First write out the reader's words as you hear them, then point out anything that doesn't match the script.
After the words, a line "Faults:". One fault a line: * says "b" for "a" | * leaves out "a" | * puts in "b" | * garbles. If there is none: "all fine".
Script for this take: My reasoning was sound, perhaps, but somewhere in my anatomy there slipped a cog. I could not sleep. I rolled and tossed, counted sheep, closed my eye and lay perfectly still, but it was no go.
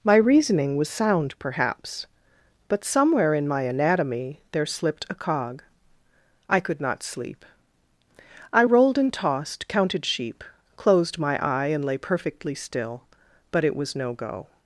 My reasoning was sound, perhaps, but somewhere in my anatomy there slipped a cog. I could not sleep. I rolled and tossed, counted sheep, closed my eye and lay perfectly still, but it was no go.
Faults:
all fine